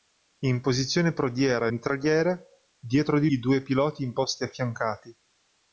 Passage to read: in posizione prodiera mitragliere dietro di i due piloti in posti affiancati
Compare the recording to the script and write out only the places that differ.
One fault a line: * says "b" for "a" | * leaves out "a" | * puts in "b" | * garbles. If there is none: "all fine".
all fine